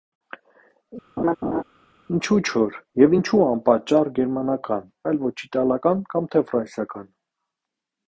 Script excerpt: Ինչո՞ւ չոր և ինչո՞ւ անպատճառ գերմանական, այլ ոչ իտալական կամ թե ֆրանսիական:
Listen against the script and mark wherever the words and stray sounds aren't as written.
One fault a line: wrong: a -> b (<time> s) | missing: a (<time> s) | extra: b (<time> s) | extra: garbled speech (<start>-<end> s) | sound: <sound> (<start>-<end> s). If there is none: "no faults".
sound: laugh (1.2-1.6 s)